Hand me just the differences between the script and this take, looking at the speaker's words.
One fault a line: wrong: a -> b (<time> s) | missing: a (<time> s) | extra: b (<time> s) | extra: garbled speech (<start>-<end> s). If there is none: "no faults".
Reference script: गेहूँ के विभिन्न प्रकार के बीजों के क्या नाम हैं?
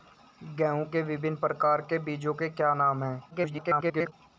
extra: garbled speech (3.3-4.1 s)